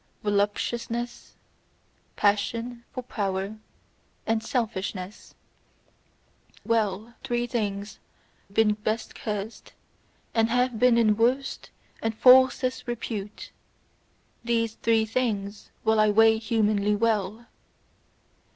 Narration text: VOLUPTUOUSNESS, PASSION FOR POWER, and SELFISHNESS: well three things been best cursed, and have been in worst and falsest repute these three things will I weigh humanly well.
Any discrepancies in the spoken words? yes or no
no